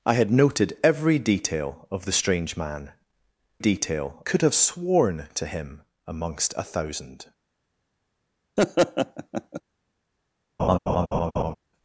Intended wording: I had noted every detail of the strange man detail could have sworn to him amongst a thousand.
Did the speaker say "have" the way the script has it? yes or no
yes